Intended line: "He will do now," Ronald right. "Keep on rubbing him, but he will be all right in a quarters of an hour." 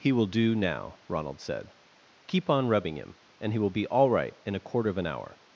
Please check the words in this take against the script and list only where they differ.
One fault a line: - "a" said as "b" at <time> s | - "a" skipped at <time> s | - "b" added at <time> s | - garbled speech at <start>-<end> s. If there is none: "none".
- "right" said as "said" at 1.4 s
- "but" said as "and" at 3.4 s
- "quarters" said as "quarter" at 4.6 s